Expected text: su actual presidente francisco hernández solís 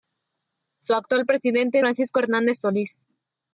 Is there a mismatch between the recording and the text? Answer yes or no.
no